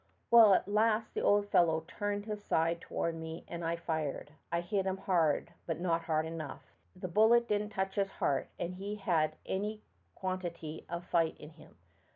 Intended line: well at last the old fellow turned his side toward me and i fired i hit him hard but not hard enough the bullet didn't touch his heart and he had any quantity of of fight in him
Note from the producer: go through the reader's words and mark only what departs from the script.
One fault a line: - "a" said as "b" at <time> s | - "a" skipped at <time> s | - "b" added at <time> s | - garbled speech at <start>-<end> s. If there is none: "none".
- "of" skipped at 11.0 s